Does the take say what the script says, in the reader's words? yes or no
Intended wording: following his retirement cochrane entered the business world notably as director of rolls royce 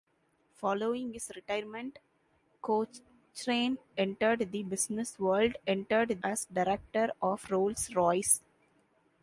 no